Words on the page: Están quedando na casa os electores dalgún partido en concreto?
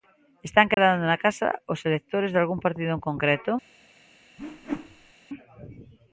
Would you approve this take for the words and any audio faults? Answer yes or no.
no